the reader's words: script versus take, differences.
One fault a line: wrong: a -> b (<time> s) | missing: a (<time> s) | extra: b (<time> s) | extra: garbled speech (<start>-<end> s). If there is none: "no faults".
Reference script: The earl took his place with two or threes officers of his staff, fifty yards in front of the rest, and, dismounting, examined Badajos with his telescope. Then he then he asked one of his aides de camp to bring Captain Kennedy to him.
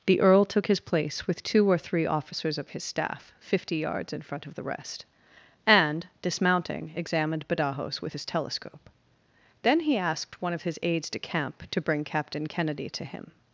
wrong: threes -> three (1.8 s)
missing: then he (10.0 s)